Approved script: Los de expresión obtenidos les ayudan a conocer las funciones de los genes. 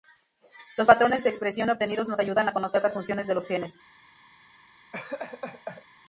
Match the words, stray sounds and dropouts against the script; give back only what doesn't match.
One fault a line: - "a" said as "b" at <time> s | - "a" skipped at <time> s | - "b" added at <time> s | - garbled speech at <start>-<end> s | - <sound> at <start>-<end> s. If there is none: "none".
- "patrones" added at 0.9 s
- "les" said as "nos" at 2.1 s
- laugh at 4.9-5.9 s